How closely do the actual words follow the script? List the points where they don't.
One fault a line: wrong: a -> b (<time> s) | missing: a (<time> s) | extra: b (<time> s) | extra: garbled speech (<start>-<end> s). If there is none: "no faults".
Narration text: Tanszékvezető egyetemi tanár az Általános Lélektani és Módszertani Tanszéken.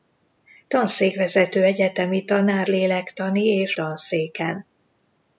missing: az Általános (2.7 s)
missing: Módszertani (3.8 s)